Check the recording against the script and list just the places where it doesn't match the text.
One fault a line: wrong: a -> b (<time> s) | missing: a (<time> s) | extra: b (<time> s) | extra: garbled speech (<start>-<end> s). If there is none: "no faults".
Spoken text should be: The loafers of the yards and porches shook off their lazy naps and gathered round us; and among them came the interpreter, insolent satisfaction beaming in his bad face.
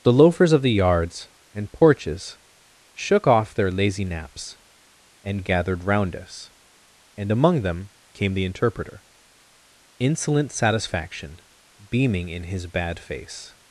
no faults